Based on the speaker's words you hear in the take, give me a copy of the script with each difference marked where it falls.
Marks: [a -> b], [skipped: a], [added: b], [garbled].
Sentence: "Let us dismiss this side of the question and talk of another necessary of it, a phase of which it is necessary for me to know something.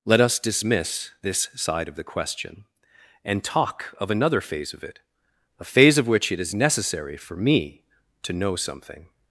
"Let us dismiss this side of the question and talk of another [necessary -> phase] of it, a phase of which it is necessary for me to know something.